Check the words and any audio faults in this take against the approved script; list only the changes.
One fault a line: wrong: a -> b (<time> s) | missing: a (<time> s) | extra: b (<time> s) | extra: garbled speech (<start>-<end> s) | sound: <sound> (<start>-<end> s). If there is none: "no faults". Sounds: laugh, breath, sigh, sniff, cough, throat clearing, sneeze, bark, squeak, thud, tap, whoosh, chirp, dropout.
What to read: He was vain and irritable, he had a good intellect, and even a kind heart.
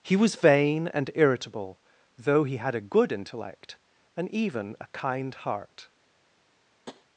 extra: though (2.2 s)
sound: tap (6.9-7.0 s)